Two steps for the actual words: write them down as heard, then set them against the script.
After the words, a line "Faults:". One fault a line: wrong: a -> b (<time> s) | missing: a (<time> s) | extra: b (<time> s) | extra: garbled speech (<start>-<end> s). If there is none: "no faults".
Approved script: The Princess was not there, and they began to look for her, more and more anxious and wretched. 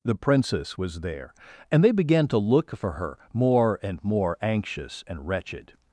The Princess was there, and they began to look for her, more and more anxious and wretched.
Faults:
missing: not (1.0 s)